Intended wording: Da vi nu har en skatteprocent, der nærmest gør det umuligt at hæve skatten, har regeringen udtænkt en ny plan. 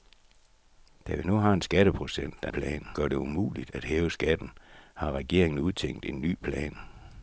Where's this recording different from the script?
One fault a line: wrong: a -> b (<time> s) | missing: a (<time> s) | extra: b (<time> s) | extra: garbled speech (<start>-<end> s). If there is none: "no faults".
wrong: nærmest -> plan (2.5 s)